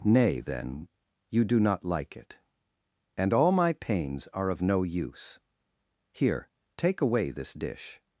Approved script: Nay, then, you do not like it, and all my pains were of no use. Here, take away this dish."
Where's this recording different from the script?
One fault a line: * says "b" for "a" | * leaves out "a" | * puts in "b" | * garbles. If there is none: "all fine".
* says "are" for "were"